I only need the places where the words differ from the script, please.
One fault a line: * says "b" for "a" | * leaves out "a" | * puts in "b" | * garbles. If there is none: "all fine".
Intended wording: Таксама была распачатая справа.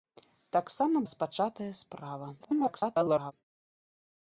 * leaves out "была"
* garbles